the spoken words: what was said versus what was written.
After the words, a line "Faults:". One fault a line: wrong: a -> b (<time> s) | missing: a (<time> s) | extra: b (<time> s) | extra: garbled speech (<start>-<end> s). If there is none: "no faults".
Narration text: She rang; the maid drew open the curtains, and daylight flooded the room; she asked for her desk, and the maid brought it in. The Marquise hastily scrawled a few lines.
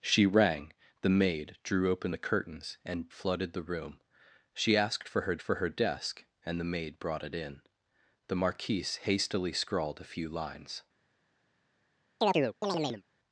She rang; the maid drew open the curtains, and flooded the room; she asked for her for her desk, and the maid brought it in. The Marquise hastily scrawled a few lines.
Faults:
missing: daylight (3.1 s)
extra: for her (5.4 s)